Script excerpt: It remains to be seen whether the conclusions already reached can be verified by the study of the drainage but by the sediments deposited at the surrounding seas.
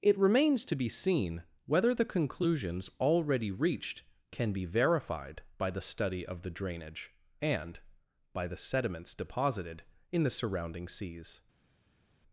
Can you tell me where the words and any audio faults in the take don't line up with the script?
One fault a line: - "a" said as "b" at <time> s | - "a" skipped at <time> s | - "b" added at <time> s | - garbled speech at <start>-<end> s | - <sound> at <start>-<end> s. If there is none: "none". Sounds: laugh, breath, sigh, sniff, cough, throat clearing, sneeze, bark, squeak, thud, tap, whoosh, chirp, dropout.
- "but" said as "and" at 7.4 s
- "at" said as "in" at 10.1 s